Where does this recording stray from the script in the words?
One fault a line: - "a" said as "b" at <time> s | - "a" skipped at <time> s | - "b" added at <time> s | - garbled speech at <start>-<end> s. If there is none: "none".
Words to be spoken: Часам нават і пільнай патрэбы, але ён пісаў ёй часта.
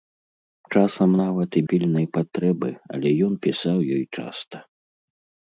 none